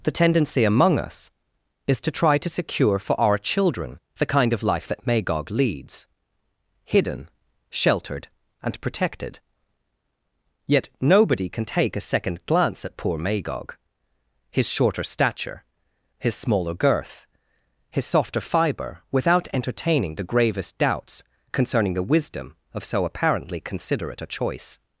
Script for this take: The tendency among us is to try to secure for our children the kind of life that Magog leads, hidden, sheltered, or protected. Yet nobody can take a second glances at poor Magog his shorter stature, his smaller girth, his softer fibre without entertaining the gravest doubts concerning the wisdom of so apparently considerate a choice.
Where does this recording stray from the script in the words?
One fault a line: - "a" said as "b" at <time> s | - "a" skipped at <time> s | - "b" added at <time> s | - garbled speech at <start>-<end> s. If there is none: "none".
- "or" said as "and" at 8.6 s
- "glances" said as "glance" at 12.4 s